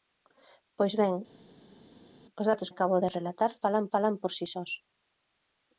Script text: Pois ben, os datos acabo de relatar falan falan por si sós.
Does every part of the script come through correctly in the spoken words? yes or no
yes